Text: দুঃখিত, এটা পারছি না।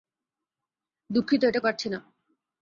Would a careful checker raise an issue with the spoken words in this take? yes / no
no